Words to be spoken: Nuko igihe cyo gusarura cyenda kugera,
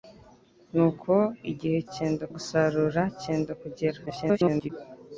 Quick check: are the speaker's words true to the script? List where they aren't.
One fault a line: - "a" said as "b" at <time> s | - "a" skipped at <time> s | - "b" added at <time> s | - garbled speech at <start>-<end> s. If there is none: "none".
- "cyo" said as "cyenda" at 1.9 s
- garbled speech at 4.1-4.7 s